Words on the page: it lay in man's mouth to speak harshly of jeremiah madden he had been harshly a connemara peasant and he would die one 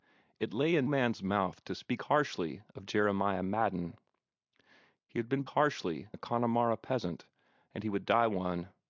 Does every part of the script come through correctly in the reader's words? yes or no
yes